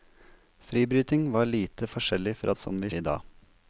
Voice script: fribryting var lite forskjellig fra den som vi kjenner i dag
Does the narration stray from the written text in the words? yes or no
yes